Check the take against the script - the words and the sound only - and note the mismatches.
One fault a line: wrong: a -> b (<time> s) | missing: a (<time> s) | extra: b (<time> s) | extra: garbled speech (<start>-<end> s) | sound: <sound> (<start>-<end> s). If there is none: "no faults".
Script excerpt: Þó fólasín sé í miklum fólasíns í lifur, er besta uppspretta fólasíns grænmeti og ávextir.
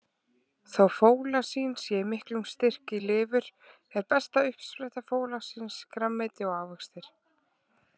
wrong: fólasíns -> styrk (2.5 s)